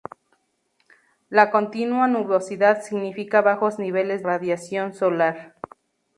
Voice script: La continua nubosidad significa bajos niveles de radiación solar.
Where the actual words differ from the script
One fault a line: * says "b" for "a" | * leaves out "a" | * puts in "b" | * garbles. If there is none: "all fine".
* leaves out "de"